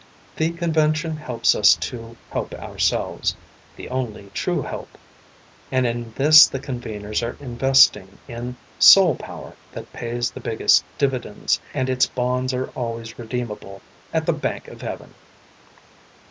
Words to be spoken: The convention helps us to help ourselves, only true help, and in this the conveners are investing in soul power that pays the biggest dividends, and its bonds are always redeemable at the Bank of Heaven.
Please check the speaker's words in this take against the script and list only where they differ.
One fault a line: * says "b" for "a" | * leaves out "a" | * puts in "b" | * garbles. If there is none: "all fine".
* puts in "the"